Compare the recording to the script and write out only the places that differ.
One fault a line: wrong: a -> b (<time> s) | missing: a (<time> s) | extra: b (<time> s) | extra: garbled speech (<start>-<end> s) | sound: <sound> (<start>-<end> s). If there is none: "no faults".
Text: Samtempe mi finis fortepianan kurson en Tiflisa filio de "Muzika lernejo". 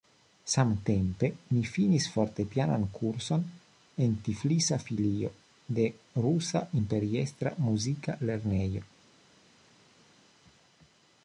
extra: Rusa Imperiestra (6.3 s)